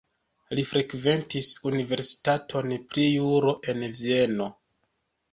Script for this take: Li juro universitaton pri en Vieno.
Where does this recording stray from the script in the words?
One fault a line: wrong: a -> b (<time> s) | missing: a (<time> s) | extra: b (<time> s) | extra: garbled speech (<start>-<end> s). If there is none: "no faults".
wrong: juro -> frekventis (0.6 s)
extra: juro (3.1 s)